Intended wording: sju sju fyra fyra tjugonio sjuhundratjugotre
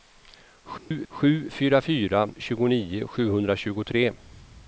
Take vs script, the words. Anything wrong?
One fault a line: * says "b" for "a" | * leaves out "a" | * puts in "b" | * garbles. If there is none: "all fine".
all fine